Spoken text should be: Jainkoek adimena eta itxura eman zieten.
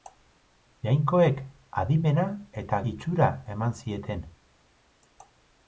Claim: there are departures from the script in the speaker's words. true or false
false